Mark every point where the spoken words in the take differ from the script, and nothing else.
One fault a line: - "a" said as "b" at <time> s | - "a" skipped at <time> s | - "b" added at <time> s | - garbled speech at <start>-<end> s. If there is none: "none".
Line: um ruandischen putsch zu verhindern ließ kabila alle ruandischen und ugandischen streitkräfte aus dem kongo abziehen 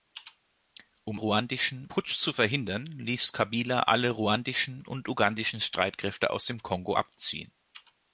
none